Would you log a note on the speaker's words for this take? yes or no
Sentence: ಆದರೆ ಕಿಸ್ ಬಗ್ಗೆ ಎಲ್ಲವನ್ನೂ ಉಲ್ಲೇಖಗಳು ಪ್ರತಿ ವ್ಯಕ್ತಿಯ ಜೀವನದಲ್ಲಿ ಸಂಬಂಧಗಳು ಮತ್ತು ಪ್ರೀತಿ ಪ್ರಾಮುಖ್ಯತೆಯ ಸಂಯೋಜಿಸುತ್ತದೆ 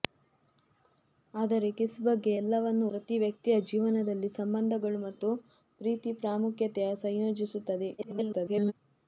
yes